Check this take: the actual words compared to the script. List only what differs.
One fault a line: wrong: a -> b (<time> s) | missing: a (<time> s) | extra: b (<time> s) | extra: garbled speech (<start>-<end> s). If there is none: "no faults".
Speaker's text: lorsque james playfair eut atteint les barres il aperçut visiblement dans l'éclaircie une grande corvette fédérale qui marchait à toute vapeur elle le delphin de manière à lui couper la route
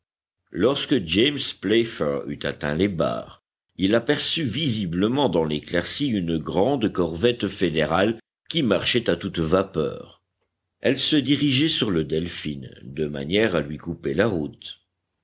extra: se dirigeait sur (11.0 s)